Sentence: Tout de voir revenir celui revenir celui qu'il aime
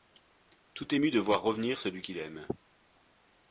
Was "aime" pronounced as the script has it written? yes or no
yes